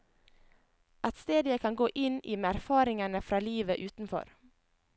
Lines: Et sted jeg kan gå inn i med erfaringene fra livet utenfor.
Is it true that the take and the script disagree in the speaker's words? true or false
false